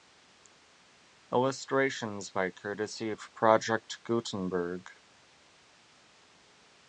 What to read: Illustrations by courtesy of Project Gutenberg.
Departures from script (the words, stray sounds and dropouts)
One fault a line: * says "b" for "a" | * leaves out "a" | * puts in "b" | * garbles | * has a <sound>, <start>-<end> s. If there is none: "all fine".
all fine